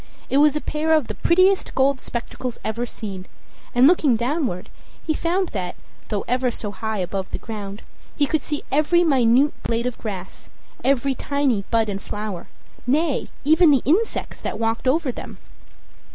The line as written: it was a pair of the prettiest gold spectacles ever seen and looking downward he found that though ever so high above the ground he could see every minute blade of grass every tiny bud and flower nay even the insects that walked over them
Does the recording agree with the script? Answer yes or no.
yes